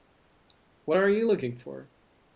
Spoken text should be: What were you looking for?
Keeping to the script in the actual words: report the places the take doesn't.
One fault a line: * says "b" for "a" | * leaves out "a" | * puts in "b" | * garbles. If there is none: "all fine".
* says "are" for "were"